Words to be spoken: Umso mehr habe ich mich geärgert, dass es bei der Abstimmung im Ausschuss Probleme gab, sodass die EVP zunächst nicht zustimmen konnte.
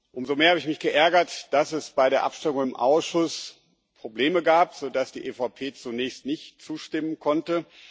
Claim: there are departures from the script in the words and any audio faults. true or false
false